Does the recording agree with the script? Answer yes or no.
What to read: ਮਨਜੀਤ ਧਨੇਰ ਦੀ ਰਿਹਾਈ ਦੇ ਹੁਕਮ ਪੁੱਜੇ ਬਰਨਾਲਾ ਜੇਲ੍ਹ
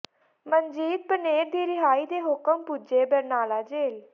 yes